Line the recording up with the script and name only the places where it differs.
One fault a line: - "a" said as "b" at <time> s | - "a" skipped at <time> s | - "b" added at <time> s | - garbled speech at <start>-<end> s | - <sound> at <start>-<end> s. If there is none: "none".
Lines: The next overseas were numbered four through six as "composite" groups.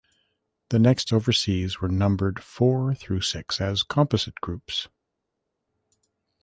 none